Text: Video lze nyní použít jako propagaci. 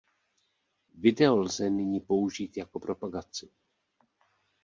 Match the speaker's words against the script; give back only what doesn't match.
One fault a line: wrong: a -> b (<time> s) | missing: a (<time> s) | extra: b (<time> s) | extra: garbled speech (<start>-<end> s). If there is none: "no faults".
no faults